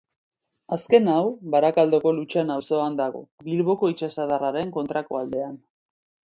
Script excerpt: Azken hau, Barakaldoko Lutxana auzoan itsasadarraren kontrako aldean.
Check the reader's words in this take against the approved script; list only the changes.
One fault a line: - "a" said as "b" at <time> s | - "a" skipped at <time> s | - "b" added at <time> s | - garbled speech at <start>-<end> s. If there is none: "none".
- "dago Bilboko" added at 3.0 s